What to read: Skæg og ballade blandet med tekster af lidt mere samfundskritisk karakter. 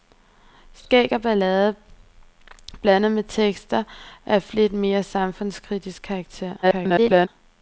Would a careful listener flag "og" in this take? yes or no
no